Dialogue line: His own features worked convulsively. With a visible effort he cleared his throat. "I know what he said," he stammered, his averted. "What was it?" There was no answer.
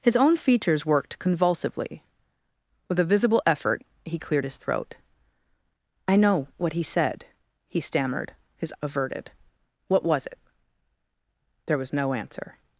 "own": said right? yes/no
yes